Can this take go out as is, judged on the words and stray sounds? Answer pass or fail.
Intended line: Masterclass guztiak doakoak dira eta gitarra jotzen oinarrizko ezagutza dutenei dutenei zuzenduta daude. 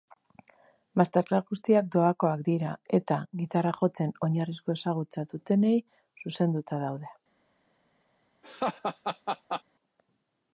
fail